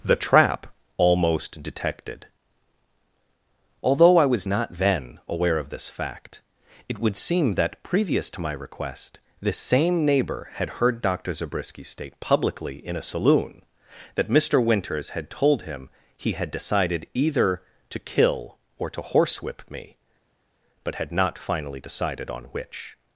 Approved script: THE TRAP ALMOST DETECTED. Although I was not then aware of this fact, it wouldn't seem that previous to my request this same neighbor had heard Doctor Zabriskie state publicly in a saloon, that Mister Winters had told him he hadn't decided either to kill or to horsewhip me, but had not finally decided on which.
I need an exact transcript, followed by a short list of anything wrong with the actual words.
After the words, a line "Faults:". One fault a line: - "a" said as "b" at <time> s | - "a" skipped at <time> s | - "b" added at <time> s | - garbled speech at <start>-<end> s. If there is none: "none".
THE TRAP ALMOST DETECTED. Although I was not then aware of this fact, it would seem that previous to my request this same neighbor had heard Doctor Zabriskie state publicly in a saloon, that Mister Winters had told him he had decided either to kill or to horsewhip me, but had not finally decided on which.
Faults:
- "wouldn't" said as "would" at 7.0 s
- "hadn't" said as "had" at 16.3 s